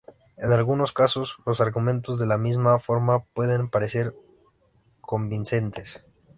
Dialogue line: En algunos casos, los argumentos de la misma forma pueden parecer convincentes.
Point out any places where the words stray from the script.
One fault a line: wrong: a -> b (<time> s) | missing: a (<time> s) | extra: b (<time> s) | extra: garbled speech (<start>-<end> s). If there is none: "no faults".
no faults